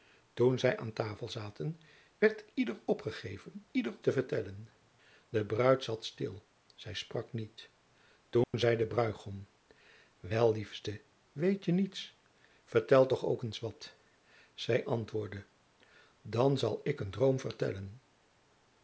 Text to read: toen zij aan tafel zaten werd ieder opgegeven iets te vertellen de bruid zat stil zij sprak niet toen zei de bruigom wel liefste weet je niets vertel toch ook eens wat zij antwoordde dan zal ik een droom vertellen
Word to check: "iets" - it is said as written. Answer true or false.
false